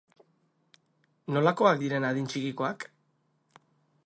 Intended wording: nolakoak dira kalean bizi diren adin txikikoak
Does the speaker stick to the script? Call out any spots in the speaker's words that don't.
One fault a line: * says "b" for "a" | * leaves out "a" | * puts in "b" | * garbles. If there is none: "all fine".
* leaves out "dira kalean bizi"